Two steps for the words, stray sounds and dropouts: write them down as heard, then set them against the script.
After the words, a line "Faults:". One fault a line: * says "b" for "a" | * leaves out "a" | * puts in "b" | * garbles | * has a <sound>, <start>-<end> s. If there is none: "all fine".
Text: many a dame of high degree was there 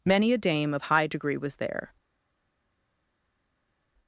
many a dame of high degree was there
Faults:
all fine